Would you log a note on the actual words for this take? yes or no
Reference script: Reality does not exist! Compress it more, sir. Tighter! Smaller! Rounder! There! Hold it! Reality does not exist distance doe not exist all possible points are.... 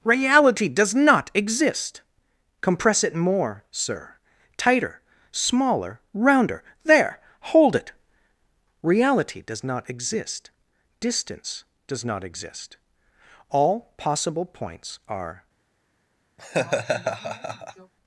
yes